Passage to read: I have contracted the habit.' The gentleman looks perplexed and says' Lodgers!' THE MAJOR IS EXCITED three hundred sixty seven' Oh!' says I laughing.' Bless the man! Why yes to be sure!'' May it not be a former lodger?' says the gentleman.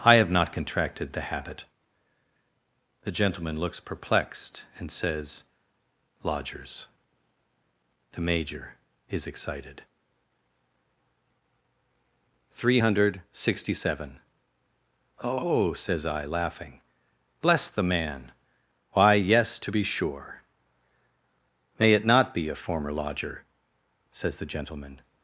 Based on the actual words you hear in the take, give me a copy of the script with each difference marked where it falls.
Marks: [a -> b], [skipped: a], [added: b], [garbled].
I have [added: not] contracted the habit.' The gentleman looks perplexed and says' Lodgers!' THE MAJOR IS EXCITED three hundred sixty seven' Oh!' says I laughing.' Bless the man! Why yes to be sure!'' May it not be a former lodger?' says the gentleman.